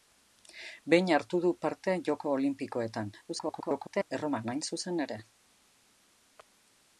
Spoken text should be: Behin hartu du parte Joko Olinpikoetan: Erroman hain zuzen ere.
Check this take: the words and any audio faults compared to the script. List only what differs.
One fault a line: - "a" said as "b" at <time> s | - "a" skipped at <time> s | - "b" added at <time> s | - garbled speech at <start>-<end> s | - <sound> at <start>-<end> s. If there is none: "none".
- garbled speech at 3.3-4.1 s